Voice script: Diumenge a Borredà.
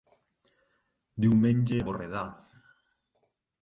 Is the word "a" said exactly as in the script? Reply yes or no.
yes